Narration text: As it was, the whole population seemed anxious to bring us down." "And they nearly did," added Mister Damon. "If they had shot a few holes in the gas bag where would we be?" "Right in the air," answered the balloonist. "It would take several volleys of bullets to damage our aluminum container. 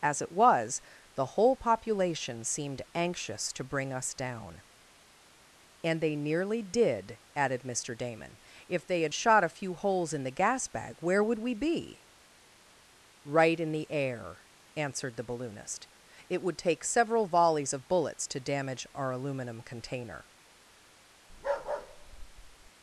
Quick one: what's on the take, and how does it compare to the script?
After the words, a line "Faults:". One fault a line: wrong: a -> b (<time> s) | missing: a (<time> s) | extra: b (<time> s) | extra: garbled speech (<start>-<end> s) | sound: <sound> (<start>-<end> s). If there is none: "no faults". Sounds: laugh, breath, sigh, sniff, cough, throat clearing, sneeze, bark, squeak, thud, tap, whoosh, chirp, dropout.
As it was, the whole population seemed anxious to bring us down." "And they nearly did," added Mister Damon. "If they had shot a few holes in the gas bag where would we be?" "Right in the air," answered the balloonist. "It would take several volleys of bullets to damage our aluminum container.
Faults:
sound: bark (21.3-22.7 s)